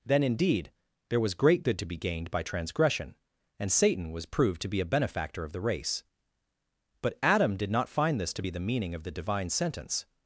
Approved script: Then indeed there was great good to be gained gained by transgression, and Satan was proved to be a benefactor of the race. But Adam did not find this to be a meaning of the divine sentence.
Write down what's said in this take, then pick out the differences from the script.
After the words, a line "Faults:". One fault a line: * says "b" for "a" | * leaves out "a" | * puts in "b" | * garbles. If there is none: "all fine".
Then indeed there was great good to be gained by transgression, and Satan was proved to be a benefactor of the race. But Adam did not find this to be the meaning of the divine sentence.
Faults:
* leaves out "gained"
* says "the" for "a"